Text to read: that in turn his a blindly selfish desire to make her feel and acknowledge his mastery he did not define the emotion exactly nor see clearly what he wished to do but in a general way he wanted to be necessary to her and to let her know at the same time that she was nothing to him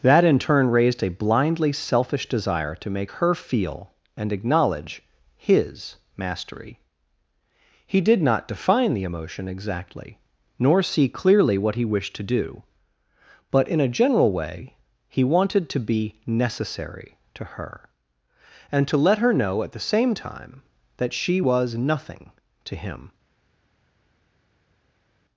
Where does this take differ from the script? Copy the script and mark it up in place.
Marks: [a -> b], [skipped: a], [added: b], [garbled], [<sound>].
that in turn [his -> raised] a blindly selfish desire to make her feel and acknowledge his mastery he did not define the emotion exactly nor see clearly what he wished to do but in a general way he wanted to be necessary to her and to let her know at the same time that she was nothing to him